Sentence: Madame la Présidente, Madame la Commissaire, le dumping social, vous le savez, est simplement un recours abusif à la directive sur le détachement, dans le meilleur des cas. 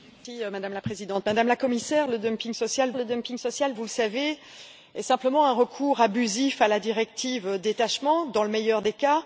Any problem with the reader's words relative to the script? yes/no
yes